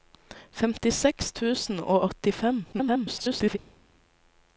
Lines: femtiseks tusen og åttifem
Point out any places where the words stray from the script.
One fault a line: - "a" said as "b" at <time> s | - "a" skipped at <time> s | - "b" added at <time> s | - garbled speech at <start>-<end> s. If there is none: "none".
- garbled speech at 2.7-3.6 s